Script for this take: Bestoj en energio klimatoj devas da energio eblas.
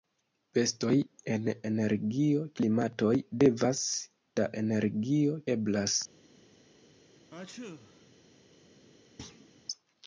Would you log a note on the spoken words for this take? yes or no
no